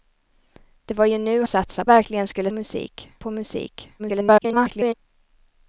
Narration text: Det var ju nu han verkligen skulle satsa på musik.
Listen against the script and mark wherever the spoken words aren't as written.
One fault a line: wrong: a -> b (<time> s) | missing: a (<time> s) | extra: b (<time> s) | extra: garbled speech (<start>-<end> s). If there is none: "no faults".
wrong: han -> satsa (1.4 s)
wrong: satsa -> musik (2.5 s)
extra: garbled speech (4.0-4.9 s)